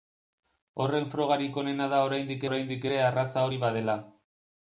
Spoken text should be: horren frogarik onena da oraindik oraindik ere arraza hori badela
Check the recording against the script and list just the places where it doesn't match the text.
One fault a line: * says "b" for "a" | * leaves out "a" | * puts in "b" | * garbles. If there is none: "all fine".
all fine